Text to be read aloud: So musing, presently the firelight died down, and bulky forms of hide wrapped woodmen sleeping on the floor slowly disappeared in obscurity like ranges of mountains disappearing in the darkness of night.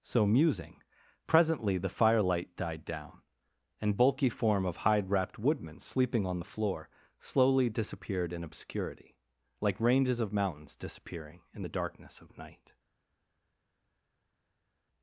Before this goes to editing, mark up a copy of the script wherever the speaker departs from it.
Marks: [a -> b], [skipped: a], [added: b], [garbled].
So musing, presently the firelight died down, and bulky [forms -> form] of hide wrapped woodmen sleeping on the floor slowly disappeared in obscurity like ranges of mountains disappearing in the darkness of night.